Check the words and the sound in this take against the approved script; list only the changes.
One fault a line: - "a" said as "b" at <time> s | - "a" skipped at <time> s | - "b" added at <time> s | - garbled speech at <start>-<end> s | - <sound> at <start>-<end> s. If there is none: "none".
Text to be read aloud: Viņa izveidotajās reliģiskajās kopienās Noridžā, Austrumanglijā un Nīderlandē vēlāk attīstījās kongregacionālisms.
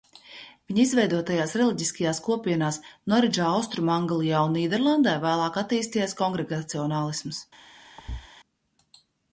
- thud at 8.0-8.3 s